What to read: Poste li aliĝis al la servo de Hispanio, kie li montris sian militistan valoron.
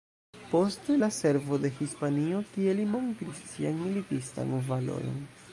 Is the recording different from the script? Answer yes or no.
yes